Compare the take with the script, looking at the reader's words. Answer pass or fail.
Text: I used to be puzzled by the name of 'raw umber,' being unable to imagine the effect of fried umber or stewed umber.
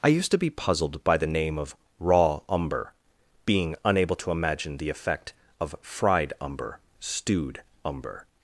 fail